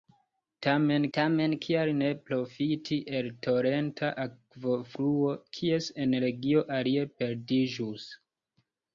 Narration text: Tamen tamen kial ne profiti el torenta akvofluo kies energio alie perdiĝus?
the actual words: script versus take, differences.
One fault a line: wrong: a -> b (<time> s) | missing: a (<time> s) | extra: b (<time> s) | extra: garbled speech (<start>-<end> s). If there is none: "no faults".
no faults